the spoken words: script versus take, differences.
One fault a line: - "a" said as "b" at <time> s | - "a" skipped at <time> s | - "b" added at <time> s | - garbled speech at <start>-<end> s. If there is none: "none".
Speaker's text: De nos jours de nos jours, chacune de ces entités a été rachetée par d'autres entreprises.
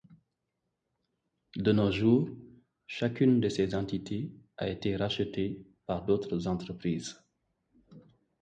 - "de nos jours" skipped at 2.4 s